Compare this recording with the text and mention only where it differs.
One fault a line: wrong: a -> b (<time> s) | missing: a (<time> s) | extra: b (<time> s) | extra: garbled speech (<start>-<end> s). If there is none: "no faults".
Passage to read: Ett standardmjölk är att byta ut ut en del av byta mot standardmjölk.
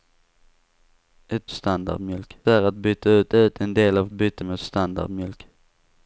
no faults